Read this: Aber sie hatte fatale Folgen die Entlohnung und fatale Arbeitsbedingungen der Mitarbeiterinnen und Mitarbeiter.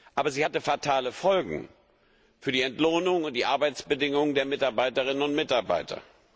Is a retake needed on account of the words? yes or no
yes